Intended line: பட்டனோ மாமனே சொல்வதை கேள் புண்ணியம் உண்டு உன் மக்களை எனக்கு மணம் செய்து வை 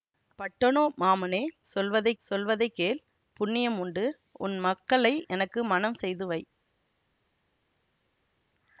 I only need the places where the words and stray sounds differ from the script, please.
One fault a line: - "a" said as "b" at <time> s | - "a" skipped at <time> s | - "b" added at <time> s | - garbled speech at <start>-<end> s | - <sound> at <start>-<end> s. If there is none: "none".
- "சொல்வதை" added at 2.2 s